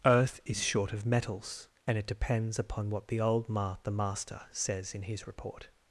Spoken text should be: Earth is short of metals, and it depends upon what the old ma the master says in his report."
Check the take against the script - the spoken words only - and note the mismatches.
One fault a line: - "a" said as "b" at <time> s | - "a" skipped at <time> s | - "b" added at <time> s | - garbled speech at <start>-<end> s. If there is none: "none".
none